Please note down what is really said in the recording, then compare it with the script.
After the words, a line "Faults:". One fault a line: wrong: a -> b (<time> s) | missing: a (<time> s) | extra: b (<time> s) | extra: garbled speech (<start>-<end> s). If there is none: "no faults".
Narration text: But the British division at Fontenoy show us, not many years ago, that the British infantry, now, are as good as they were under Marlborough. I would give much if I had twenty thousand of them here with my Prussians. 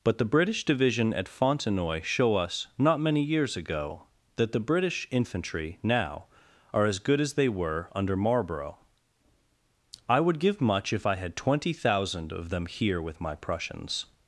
But the British division at Fontenoy show us, not many years ago, that the British infantry, now, are as good as they were under Marlborough. I would give much if I had twenty thousand of them here with my Prussians.
Faults:
no faults